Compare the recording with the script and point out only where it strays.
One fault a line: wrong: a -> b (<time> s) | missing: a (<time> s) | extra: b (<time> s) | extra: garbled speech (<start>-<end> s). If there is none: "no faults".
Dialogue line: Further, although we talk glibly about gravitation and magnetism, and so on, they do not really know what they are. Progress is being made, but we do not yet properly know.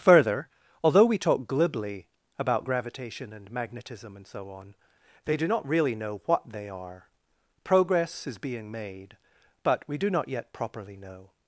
no faults